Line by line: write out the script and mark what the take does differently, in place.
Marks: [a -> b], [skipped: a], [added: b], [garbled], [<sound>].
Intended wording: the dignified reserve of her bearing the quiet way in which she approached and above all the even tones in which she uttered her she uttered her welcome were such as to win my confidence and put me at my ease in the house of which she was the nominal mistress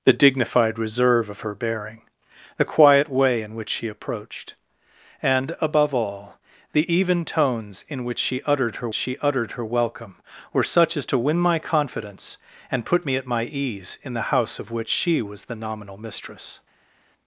the dignified reserve of her bearing the quiet way in which she approached and above all the even tones in which she uttered her she uttered her welcome were such as to win my confidence and put me at my ease in the house of which she was the nominal mistress